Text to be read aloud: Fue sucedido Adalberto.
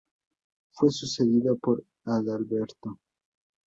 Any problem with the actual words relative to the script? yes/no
yes